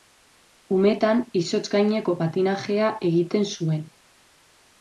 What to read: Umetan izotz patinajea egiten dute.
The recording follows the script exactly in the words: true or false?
false